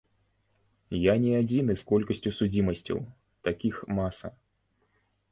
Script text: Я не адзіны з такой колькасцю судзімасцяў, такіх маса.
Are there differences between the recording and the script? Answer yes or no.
yes